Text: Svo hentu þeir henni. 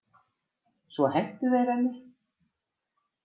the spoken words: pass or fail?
pass